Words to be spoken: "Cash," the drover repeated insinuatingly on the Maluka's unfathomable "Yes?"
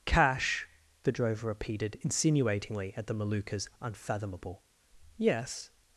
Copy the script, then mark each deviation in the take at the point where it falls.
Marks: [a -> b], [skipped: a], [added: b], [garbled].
"Cash," the drover repeated insinuatingly [on -> at] the Maluka's unfathomable "Yes?"